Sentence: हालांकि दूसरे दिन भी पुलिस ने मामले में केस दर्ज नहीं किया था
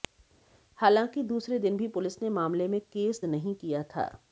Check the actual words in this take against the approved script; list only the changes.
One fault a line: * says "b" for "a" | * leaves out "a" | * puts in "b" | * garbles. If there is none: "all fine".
* leaves out "दर्ज"